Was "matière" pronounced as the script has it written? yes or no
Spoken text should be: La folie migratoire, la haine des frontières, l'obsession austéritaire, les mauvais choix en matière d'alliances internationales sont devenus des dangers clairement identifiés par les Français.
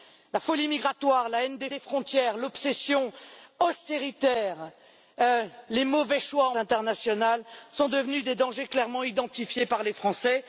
no